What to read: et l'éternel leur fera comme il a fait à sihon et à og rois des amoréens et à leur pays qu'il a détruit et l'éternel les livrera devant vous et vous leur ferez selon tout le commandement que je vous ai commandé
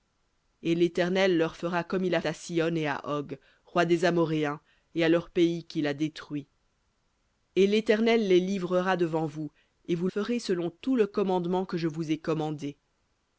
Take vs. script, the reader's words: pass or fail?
fail